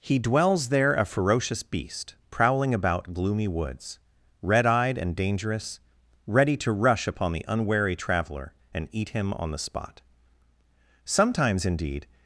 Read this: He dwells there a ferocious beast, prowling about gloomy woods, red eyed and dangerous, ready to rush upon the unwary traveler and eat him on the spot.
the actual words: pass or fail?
fail